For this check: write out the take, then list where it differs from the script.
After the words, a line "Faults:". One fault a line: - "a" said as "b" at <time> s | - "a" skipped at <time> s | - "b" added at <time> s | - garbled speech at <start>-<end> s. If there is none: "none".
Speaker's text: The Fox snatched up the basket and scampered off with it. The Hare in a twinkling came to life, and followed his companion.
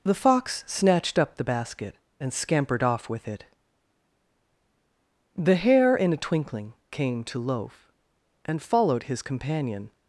The Fox snatched up the basket and scampered off with it. The Hare in a twinkling came to loaf, and followed his companion.
Faults:
- "life" said as "loaf" at 7.4 s